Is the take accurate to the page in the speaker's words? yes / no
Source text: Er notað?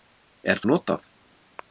yes